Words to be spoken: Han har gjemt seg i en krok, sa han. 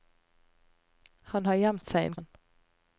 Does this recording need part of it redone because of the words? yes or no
yes